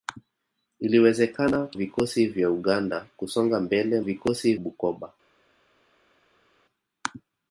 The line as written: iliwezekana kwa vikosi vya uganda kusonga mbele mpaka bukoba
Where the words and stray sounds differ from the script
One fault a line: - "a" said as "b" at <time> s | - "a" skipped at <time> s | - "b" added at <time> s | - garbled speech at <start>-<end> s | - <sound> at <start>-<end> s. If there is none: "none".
- "kwa" skipped at 1.7 s
- "mpaka" said as "vikosi" at 4.0 s